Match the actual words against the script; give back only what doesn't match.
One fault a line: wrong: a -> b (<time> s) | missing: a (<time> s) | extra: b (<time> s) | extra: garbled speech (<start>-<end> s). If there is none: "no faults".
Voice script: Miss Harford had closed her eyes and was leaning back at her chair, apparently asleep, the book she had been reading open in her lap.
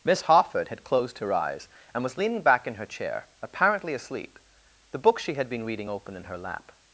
wrong: at -> in (2.6 s)